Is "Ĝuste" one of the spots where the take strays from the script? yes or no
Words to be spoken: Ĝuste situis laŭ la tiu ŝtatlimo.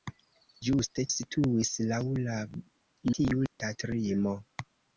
no